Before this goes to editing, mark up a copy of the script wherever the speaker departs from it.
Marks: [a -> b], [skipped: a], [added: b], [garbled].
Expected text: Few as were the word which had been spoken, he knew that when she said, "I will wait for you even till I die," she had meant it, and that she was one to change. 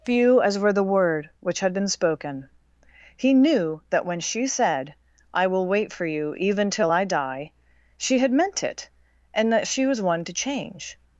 Few as were the word which had been spoken, he knew that when she said, "I will wait for you even till I die," she had meant it, and that she was one to change.